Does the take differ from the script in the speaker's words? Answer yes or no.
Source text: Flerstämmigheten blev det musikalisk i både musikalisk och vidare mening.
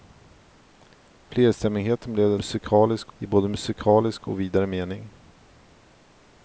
no